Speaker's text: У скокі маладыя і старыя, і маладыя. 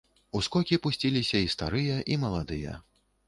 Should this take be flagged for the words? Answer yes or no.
yes